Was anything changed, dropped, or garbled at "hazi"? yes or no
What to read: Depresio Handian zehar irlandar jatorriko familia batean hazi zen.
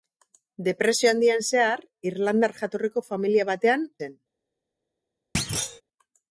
yes